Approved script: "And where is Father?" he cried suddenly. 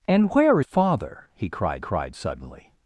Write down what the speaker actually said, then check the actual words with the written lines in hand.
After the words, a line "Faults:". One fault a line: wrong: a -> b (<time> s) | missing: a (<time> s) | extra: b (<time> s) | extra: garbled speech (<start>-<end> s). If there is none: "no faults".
"And where Father?" he cried cried suddenly.
Faults:
missing: is (0.6 s)
extra: cried (1.8 s)